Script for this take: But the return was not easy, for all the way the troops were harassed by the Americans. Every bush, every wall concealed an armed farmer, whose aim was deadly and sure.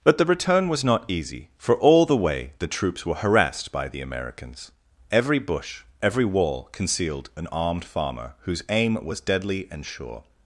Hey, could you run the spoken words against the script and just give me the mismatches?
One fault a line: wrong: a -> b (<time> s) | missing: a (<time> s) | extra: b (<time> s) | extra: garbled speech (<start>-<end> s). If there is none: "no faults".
no faults